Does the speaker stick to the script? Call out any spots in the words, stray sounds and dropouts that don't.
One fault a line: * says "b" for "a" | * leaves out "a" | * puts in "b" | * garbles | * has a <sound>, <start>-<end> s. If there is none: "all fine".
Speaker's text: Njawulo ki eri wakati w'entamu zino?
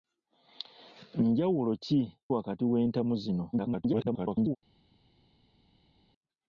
* leaves out "eri"
* garbles